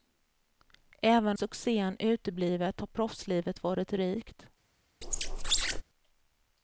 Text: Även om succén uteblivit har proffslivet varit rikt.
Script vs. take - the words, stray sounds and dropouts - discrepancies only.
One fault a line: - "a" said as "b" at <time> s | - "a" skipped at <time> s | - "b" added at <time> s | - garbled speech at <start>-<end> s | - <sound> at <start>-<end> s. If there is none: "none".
- "om" skipped at 1.4 s
- squeak at 5.0-5.8 s